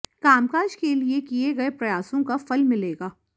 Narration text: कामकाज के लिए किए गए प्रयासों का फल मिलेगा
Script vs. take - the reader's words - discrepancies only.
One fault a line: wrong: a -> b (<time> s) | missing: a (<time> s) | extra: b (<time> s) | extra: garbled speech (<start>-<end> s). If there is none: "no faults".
no faults